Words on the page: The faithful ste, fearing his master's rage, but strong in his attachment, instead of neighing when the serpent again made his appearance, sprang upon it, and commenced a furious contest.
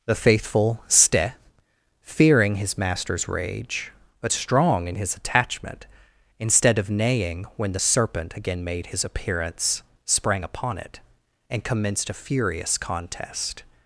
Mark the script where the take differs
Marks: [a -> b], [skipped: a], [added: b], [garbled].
The faithful ste, fearing his master's rage, but strong in his attachment, instead of neighing when the serpent again made his appearance, sprang upon it, and commenced a furious contest.